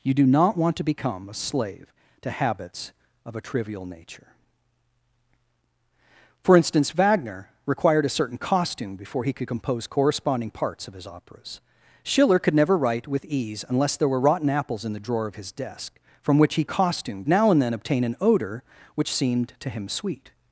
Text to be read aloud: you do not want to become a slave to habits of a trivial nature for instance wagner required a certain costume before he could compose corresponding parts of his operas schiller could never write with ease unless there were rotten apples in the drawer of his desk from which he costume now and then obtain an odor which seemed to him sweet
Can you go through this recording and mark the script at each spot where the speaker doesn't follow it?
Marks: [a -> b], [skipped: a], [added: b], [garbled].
you do not want to become a slave to habits of a trivial nature for instance wagner required a certain costume before he could compose corresponding parts of his operas schiller could never write with ease unless there were rotten apples in the drawer of his desk from which he costume now and then obtain an odor which seemed to him sweet